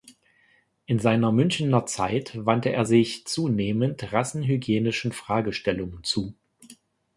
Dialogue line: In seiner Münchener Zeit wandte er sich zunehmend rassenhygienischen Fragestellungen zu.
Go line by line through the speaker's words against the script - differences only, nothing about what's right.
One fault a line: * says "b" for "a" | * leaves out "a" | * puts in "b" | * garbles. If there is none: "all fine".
all fine